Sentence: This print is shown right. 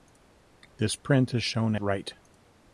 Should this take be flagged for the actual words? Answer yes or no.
no